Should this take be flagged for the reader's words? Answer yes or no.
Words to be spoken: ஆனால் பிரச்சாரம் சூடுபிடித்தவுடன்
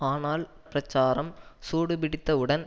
no